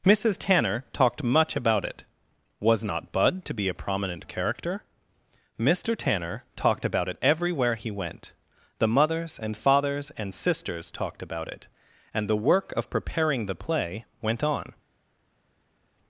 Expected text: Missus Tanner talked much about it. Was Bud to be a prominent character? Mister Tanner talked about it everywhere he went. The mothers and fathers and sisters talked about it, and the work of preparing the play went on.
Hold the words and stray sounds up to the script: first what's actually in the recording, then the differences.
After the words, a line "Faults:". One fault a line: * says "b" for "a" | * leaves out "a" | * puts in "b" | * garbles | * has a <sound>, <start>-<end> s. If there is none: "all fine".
Missus Tanner talked much about it. Was not Bud to be a prominent character? Mister Tanner talked about it everywhere he went. The mothers and fathers and sisters talked about it, and the work of preparing the play went on.
Faults:
* puts in "not"